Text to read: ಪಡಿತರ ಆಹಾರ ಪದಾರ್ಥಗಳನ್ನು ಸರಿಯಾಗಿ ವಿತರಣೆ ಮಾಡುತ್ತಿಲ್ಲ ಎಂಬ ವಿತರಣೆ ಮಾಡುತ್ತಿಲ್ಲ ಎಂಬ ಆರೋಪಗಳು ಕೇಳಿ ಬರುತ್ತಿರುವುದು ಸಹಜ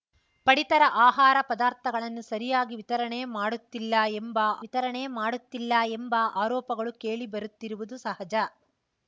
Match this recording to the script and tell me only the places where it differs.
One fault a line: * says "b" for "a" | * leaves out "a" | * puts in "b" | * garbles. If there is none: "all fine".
all fine